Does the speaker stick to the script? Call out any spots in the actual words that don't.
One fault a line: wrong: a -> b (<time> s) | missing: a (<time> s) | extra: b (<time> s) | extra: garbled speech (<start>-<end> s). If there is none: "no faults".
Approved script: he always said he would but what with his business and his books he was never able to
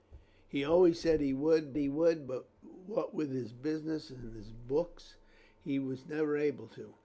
extra: he would (1.8 s)